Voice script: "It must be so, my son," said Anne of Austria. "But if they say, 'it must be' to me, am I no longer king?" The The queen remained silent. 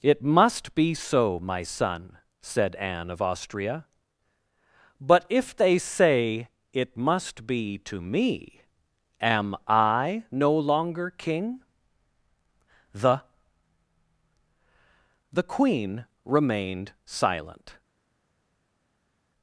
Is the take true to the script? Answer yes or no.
yes